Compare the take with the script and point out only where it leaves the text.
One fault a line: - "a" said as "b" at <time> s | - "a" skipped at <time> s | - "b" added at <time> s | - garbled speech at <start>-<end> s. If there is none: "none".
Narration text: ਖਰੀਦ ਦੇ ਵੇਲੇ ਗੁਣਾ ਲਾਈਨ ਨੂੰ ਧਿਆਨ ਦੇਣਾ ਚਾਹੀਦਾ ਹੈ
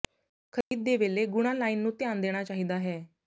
none